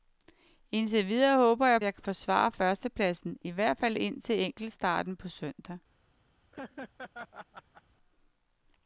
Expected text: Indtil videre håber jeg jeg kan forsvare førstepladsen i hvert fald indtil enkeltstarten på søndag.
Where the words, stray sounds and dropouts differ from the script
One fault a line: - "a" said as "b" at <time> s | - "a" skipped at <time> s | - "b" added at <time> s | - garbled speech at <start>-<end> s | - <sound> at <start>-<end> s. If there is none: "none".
- laugh at 6.5-7.8 s